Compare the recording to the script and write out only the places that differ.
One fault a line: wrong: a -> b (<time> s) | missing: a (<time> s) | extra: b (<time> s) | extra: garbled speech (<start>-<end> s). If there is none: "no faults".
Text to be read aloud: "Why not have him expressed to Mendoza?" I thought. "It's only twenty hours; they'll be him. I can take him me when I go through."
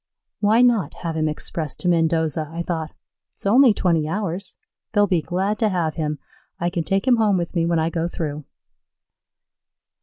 extra: glad to have (5.2 s)
extra: home with (7.2 s)